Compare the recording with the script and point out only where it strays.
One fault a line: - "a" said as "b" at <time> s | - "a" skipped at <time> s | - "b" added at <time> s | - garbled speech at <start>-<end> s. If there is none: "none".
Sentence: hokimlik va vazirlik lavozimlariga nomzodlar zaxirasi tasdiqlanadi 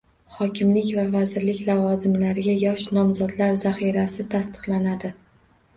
- "yosh" added at 2.6 s